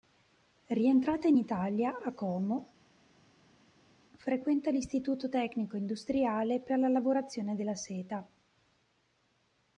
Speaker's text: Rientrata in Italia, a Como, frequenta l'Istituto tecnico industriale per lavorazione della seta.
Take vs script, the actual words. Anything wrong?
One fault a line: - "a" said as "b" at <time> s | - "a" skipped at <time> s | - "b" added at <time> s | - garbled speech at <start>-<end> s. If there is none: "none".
- "la" added at 6.8 s